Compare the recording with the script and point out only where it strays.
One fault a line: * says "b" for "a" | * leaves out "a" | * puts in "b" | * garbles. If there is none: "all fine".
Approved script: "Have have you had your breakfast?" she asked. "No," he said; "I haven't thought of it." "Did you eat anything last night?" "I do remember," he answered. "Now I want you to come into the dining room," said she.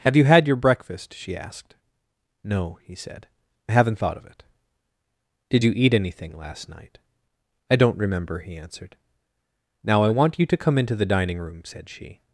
* leaves out "have"
* says "don't" for "do"